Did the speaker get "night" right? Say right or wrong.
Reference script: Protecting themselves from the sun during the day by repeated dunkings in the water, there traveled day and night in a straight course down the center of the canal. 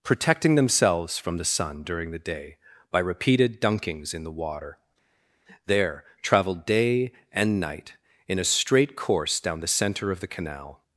right